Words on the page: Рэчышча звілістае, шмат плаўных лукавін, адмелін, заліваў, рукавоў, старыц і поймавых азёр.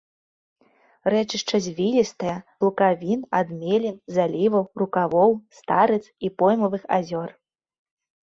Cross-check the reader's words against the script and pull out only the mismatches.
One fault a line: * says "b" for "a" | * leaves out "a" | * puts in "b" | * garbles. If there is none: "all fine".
* leaves out "шмат плаўных"